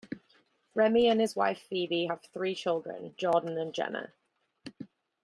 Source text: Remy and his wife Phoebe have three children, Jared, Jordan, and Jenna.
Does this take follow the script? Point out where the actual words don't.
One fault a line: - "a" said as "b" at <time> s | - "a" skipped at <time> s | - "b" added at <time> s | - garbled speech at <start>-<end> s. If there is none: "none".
- "Jared" skipped at 3.2 s